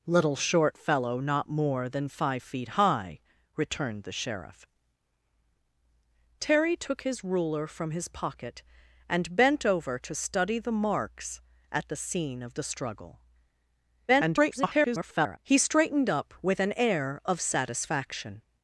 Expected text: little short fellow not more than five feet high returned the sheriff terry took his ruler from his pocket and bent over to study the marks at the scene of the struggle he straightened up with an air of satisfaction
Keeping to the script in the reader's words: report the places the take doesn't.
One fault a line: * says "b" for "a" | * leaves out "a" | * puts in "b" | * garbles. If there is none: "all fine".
* garbles